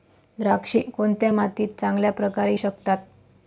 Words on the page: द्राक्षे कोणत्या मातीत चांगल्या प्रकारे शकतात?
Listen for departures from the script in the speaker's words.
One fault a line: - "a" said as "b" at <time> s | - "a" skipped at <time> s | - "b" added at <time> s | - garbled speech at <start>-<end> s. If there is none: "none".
none